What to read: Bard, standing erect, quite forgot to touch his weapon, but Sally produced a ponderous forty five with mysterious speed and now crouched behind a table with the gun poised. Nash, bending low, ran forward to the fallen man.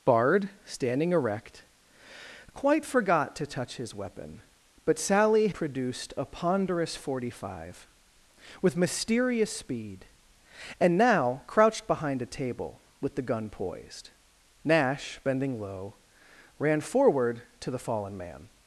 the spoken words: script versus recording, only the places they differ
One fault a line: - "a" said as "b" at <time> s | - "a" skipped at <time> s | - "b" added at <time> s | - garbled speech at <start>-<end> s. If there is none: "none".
none